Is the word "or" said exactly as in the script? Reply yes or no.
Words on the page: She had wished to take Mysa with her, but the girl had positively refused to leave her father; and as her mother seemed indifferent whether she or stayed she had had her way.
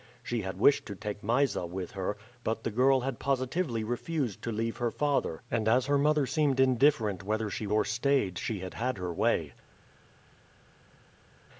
yes